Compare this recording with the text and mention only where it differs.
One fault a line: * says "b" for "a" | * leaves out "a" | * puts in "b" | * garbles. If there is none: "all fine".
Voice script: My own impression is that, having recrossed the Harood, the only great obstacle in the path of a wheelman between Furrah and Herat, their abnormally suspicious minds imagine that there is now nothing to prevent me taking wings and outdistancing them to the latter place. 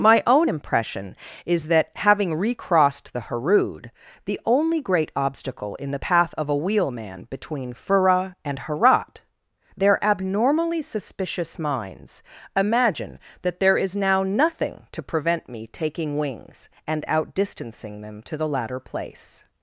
all fine